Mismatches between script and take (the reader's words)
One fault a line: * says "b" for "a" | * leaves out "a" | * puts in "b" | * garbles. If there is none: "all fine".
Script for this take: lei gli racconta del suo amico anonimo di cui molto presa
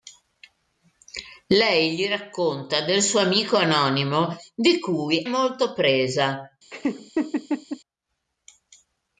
all fine